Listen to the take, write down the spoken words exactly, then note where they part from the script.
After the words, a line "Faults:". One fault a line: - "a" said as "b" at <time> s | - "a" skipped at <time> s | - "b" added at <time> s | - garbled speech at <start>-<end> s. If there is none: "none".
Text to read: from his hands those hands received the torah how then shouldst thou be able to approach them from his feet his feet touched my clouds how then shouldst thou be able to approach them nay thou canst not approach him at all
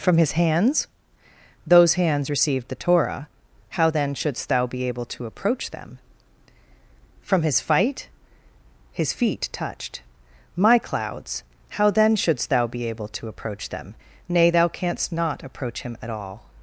from his hands those hands received the torah how then shouldst thou be able to approach them from his fight his feet touched my clouds how then shouldst thou be able to approach them nay thou canst not approach him at all
Faults:
- "feet" said as "fight" at 7.6 s